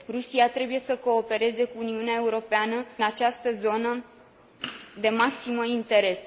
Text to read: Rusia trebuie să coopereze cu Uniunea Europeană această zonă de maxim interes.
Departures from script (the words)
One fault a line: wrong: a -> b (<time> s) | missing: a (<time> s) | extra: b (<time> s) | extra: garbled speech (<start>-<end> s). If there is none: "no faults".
no faults